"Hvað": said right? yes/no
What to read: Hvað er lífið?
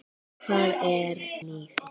yes